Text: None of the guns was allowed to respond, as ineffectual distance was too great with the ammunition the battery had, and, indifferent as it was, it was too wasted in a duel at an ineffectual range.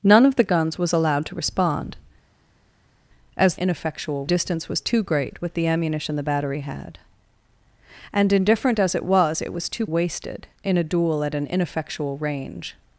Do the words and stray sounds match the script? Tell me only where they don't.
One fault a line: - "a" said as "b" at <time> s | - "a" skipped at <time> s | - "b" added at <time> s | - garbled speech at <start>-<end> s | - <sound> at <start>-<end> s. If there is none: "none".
none